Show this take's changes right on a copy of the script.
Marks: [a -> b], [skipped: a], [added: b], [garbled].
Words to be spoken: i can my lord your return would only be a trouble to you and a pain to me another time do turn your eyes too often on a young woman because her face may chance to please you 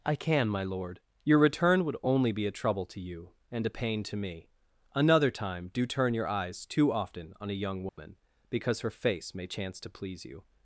i can my lord your return would only be a trouble to you and a pain to me another time do turn your eyes too often on a young woman because her face may chance to please you